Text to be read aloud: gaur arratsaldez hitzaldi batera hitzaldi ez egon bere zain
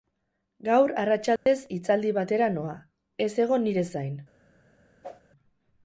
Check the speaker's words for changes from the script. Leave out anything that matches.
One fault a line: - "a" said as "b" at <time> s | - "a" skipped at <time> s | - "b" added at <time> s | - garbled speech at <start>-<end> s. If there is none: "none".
- "hitzaldi" said as "noa" at 2.6 s
- "bere" said as "nire" at 3.7 s